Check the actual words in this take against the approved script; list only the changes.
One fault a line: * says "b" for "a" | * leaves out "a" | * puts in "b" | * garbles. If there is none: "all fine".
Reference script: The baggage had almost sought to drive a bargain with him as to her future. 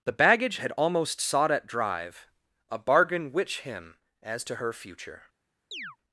* says "at" for "to"
* says "which" for "with"